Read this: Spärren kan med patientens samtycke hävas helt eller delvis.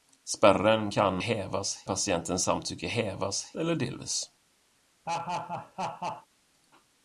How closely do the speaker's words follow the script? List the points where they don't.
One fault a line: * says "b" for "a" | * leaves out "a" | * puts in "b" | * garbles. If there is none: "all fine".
* says "hävas" for "med"
* leaves out "helt"